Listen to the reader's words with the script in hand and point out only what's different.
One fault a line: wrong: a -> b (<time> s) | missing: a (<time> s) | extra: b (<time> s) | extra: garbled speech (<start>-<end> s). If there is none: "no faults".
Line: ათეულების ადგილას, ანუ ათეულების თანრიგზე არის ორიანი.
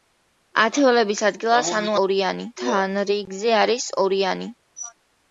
wrong: ათეულების -> ორიანი (2.1 s)